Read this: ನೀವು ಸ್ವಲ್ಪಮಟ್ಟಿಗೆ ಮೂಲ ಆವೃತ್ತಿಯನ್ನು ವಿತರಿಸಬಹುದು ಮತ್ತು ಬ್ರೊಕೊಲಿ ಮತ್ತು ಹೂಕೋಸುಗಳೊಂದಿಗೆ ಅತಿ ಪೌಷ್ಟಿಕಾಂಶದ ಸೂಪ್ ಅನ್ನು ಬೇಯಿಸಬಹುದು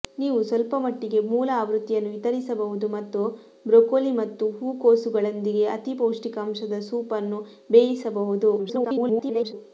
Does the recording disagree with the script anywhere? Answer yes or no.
yes